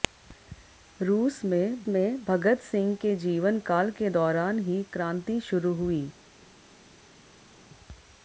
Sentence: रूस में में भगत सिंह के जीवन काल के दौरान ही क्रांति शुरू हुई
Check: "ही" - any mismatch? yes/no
no